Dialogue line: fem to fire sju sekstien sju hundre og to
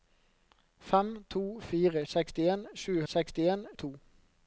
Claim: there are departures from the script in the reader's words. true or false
true